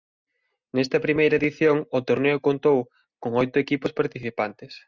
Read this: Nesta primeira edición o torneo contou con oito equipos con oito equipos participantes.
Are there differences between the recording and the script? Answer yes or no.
yes